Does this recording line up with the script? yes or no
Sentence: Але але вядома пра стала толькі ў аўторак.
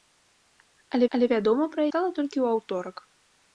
yes